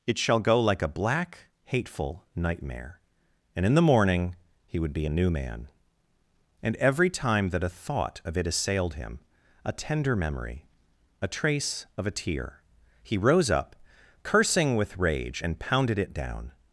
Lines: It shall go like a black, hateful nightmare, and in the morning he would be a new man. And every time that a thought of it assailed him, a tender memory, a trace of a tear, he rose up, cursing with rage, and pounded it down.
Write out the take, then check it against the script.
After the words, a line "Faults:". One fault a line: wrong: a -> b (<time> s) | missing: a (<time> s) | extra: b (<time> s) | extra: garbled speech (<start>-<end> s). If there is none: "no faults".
It shall go like a black, hateful nightmare, and in the morning he would be a new man. And every time that a thought of it assailed him, a tender memory, a trace of a tear, he rose up, cursing with rage, and pounded it down.
Faults:
no faults